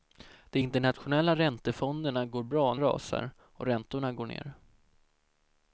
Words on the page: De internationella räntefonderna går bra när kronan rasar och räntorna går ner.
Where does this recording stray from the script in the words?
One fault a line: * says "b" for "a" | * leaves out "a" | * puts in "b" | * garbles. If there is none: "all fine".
* leaves out "när kronan"